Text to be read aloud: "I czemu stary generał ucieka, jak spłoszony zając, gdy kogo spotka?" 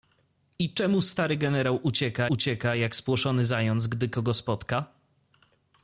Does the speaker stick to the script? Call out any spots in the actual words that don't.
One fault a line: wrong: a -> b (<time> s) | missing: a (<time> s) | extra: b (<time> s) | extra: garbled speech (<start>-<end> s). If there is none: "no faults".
extra: ucieka (2.3 s)